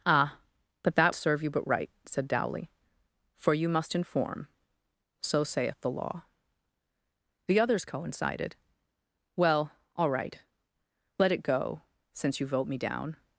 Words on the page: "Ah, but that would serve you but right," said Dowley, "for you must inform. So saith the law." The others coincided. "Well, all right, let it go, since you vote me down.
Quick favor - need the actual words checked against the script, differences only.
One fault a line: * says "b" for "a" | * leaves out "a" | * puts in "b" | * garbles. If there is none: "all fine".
* leaves out "would"